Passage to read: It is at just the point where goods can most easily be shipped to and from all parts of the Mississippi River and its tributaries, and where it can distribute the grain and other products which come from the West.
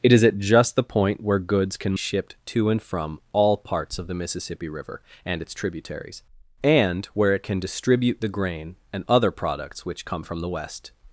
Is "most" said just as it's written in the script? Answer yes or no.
no